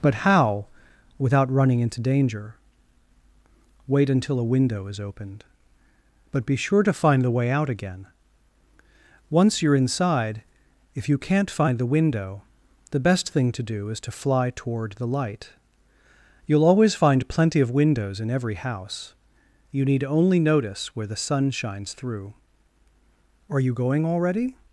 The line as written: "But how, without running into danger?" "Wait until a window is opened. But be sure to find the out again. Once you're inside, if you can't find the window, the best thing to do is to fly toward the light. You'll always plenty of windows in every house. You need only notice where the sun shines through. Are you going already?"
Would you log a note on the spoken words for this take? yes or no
yes